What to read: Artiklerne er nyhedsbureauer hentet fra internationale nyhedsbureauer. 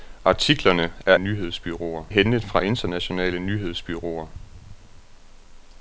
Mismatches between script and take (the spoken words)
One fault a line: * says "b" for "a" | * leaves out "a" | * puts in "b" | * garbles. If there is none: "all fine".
all fine